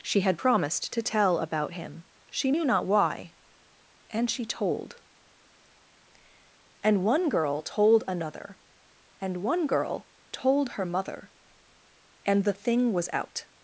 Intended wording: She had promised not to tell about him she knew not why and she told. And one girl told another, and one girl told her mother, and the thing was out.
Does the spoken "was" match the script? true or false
true